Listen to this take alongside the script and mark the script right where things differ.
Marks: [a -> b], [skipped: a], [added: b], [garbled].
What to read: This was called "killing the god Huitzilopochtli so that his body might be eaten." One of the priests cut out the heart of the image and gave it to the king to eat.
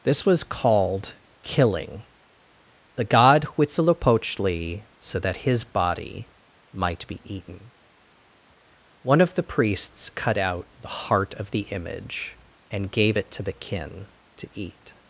This was called "killing the god Huitzilopochtli so that his body might be eaten." One of the priests cut out the heart of the image and gave it to the [king -> kin] to eat.